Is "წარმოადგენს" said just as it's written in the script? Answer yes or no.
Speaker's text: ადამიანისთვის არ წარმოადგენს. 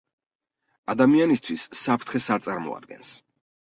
yes